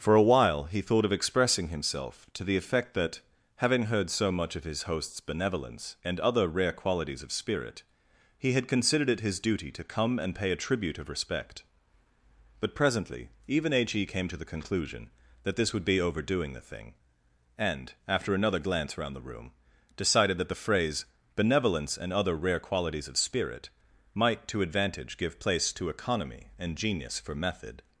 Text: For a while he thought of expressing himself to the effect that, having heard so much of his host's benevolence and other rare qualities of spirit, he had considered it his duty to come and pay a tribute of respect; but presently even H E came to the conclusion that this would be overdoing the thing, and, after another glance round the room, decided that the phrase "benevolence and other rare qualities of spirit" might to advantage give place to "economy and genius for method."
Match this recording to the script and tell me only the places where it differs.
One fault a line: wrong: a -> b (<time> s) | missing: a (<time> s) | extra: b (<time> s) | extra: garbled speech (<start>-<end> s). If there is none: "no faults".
no faults